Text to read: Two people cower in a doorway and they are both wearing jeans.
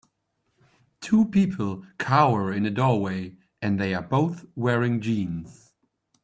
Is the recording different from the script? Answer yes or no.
no